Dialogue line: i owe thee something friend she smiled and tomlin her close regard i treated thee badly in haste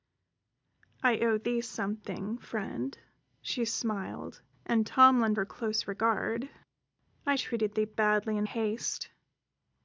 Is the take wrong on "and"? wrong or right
right